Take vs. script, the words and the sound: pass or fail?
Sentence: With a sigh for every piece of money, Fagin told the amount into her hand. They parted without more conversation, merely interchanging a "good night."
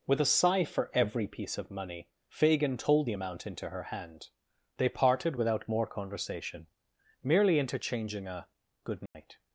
fail